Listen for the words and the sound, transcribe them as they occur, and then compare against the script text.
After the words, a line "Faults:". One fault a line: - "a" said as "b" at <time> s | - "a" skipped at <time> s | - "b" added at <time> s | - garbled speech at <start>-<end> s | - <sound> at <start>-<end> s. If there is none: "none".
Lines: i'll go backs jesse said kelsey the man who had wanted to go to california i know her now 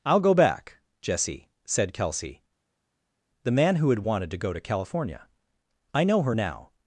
i'll go back jesse said kelsey the man who had wanted to go to california i know her now
Faults:
- "backs" said as "back" at 0.3 s